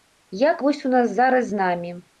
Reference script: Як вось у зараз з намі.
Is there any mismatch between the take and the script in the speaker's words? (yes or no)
yes